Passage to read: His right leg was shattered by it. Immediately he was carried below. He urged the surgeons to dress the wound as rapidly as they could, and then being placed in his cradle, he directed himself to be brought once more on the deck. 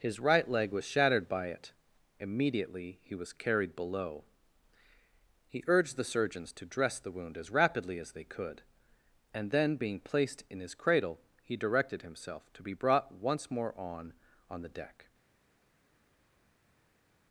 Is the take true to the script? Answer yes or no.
no